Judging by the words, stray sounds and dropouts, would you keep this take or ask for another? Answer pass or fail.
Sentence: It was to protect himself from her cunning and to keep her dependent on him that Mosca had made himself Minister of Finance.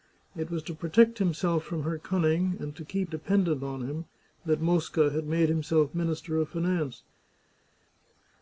fail